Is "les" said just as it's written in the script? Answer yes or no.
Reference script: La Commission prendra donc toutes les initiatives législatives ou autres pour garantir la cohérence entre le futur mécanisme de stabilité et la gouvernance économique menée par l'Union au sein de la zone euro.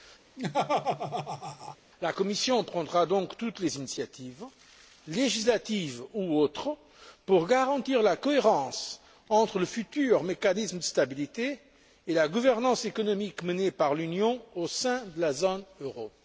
yes